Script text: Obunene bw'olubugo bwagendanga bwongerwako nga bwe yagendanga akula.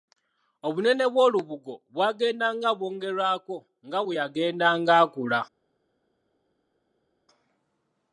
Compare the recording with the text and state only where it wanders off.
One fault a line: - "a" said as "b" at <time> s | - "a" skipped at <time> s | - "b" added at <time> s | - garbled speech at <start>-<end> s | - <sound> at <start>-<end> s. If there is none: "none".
none